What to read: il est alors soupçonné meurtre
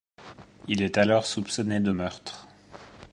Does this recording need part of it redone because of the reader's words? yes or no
yes